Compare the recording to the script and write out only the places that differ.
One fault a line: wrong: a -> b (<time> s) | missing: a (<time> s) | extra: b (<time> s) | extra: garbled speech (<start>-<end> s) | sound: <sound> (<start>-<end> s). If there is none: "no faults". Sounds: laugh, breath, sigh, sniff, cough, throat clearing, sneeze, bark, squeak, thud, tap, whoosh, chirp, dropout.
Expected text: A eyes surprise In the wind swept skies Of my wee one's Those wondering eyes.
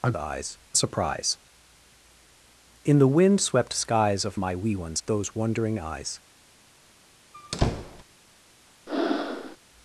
sound: squeak (7.3-8.0 s)
sound: breath (8.9-9.6 s)